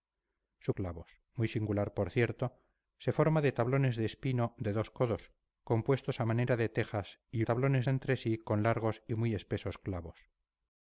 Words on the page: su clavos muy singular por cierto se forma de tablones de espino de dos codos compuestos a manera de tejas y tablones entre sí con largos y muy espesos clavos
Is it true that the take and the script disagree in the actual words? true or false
false